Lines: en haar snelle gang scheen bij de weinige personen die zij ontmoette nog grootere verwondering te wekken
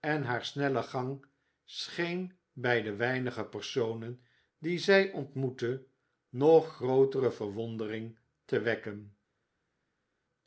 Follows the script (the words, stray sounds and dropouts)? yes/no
yes